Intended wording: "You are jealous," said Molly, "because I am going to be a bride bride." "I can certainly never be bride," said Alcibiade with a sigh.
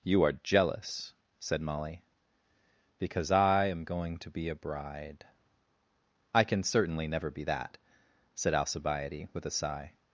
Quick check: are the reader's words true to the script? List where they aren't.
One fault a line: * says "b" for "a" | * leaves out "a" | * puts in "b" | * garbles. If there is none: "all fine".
* leaves out "bride"
* says "that" for "bride"